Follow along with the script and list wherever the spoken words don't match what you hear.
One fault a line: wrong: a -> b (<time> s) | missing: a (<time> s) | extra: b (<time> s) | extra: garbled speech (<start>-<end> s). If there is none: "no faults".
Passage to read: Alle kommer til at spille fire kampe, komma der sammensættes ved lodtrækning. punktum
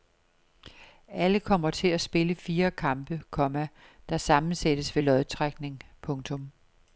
no faults